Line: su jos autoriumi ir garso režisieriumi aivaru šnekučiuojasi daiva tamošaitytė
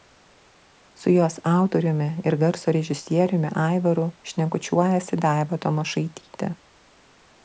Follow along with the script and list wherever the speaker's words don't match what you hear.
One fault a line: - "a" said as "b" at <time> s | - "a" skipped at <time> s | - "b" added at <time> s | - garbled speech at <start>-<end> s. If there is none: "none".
none